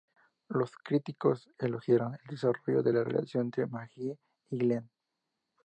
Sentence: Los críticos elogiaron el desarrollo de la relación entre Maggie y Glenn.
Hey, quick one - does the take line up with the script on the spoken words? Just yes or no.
yes